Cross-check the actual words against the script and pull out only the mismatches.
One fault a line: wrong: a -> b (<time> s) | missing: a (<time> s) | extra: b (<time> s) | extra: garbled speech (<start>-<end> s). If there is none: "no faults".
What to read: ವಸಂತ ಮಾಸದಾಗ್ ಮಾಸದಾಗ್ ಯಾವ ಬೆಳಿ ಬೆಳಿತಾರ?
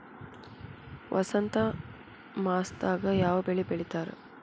missing: ಮಾಸದಾಗ್ (3.1 s)